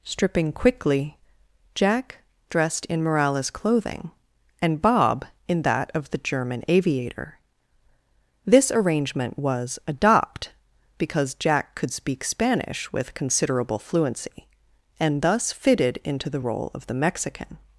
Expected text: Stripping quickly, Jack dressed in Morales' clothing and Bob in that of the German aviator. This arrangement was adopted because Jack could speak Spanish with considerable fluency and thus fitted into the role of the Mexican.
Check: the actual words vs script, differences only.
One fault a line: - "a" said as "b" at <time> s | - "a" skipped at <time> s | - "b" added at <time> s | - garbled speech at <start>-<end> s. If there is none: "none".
- "adopted" said as "adopt" at 9.9 s